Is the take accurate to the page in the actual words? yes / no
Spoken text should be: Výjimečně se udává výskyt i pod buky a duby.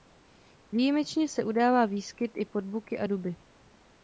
yes